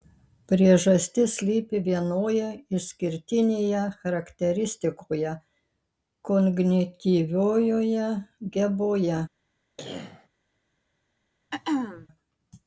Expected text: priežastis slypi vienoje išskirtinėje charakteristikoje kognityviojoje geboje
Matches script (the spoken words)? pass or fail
pass